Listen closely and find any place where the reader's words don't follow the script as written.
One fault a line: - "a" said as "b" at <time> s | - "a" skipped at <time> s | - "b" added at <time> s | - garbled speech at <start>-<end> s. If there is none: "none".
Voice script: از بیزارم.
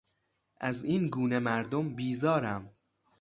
- "این گونه مردم" added at 0.8 s